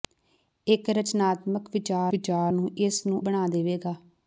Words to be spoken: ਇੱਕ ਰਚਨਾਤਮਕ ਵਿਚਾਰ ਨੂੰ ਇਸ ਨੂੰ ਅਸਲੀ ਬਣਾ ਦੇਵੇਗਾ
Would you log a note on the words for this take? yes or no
yes